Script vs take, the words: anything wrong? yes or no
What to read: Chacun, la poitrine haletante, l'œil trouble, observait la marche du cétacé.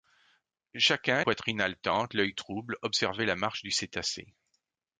yes